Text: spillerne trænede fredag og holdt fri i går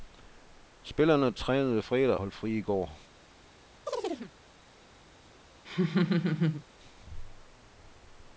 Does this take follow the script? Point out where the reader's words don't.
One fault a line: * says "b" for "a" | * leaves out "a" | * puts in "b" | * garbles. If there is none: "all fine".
* leaves out "og"